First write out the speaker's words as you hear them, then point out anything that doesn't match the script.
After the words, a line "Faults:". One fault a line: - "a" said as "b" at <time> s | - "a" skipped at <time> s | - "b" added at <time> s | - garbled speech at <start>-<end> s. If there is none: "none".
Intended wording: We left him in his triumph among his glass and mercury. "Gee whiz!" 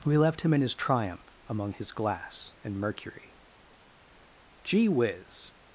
We left him in his triumph among his glass and mercury. "Gee whiz!"
Faults:
none